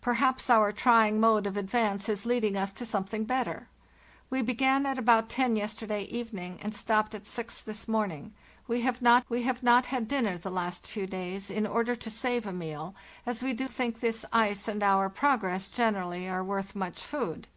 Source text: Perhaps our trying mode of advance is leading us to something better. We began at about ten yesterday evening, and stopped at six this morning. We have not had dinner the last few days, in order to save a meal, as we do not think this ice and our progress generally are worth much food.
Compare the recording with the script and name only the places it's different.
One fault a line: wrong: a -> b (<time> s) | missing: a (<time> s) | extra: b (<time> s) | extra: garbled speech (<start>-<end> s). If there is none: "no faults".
extra: we have not (9.3 s)
missing: not (13.7 s)